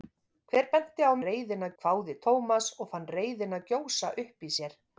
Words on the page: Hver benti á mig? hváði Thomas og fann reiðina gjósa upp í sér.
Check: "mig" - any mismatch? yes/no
yes